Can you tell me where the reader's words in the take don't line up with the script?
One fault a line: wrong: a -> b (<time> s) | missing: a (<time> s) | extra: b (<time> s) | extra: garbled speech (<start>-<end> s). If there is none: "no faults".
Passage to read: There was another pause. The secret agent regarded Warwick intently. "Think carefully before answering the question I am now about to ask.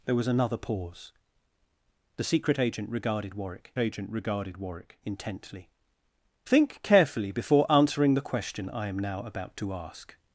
extra: agent regarded Warwick (3.8 s)